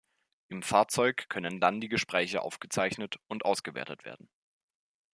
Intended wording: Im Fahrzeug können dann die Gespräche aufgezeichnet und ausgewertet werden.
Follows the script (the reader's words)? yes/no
yes